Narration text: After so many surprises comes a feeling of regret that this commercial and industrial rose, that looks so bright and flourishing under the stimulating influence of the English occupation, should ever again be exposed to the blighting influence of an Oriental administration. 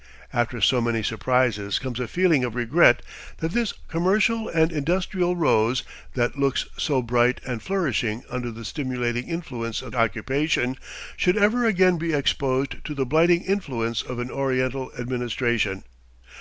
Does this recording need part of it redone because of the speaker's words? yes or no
yes